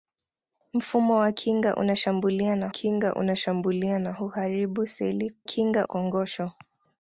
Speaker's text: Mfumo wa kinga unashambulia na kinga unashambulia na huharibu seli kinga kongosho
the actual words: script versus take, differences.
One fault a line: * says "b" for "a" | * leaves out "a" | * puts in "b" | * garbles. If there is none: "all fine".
all fine